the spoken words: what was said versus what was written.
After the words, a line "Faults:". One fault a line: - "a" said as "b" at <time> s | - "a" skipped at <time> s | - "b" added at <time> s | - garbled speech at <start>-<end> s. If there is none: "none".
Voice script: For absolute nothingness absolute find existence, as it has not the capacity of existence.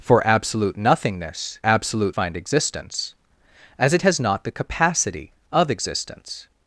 For absolute nothingness absolute find existence, as it has not the capacity of existence.
Faults:
none